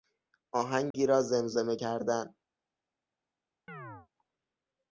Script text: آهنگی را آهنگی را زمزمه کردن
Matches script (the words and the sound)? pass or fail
fail